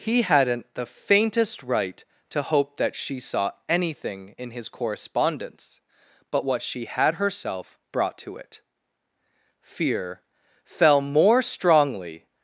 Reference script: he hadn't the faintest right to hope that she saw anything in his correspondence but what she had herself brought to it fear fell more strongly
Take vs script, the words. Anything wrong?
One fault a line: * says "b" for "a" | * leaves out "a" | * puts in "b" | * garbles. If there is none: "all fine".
all fine